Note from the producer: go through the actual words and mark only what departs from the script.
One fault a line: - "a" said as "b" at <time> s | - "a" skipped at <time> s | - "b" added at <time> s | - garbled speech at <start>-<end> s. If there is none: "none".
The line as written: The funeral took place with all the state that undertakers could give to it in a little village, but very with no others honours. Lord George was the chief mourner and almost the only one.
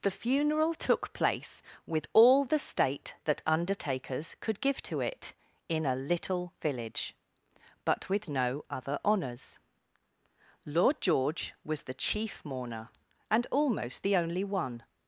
- "very" skipped at 8.1 s
- "others" said as "other" at 8.7 s